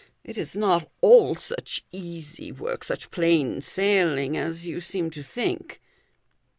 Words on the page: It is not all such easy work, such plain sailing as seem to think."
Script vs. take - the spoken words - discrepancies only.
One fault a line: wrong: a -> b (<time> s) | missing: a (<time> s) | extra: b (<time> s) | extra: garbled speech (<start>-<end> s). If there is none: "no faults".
extra: you (4.7 s)